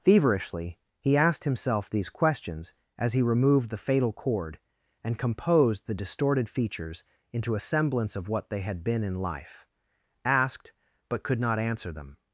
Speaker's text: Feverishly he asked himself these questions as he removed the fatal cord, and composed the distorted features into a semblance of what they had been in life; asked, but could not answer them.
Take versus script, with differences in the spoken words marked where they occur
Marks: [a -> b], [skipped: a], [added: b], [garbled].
Feverishly he asked himself these questions as he removed the fatal cord, and composed the distorted features into a semblance of what they had been in life; asked, but could not answer them.